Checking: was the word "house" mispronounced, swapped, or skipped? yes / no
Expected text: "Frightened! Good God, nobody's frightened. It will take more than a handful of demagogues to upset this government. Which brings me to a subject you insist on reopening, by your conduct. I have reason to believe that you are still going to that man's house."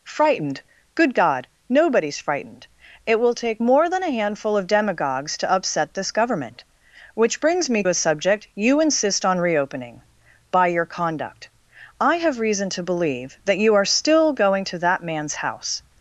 no